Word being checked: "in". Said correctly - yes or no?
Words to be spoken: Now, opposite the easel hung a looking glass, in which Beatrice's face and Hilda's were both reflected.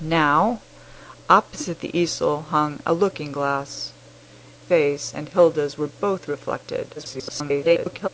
no